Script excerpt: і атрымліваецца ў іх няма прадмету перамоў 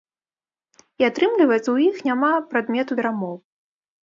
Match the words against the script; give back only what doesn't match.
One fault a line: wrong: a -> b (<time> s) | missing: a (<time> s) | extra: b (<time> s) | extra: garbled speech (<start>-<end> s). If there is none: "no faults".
no faults